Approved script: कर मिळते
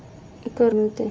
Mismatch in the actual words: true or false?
false